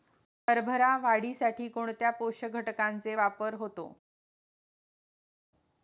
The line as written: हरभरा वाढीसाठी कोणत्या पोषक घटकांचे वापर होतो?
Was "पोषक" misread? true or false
false